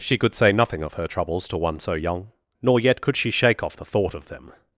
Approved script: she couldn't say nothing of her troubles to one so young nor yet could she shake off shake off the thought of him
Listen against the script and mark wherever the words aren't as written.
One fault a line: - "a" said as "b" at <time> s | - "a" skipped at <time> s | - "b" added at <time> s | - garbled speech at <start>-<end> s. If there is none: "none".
- "couldn't" said as "could" at 0.2 s
- "shake off" skipped at 3.8 s
- "him" said as "them" at 4.3 s